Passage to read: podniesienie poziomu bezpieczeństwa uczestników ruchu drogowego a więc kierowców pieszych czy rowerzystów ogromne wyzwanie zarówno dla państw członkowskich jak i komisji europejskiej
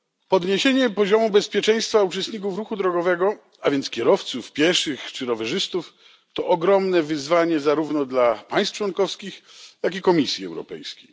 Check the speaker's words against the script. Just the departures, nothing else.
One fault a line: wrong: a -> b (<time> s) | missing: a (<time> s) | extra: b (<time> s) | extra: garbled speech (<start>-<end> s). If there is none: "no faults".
extra: to (6.3 s)